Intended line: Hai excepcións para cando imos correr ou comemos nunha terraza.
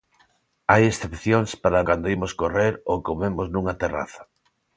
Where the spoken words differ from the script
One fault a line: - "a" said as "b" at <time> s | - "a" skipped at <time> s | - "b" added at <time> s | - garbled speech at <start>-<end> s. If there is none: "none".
none